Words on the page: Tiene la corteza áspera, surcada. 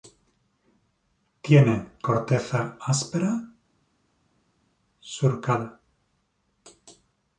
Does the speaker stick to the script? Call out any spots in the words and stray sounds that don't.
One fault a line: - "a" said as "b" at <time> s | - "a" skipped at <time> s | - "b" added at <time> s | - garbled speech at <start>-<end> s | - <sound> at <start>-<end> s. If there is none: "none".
- "la" skipped at 1.9 s